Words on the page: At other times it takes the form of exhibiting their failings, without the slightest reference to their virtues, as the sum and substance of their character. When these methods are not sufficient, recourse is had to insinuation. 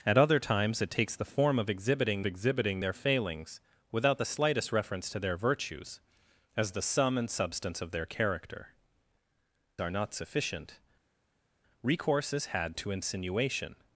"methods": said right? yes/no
no